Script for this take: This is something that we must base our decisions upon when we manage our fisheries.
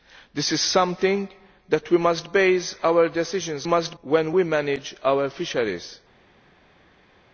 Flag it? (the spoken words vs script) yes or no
yes